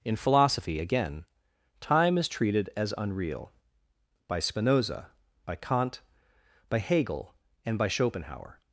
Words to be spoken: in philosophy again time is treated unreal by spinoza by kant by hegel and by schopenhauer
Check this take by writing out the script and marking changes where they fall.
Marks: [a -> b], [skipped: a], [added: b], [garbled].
in philosophy again time is treated [added: as] unreal by spinoza by kant by hegel and by schopenhauer